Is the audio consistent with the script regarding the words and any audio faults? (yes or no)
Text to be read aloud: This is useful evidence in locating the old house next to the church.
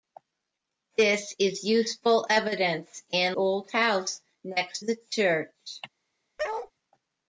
no